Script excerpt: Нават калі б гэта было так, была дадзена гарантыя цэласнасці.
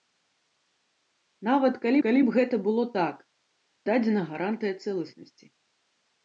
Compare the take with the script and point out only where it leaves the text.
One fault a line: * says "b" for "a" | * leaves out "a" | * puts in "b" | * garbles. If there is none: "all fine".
* puts in "калі"
* leaves out "была"